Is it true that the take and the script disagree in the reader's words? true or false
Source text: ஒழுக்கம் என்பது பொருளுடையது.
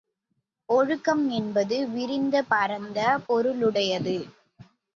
true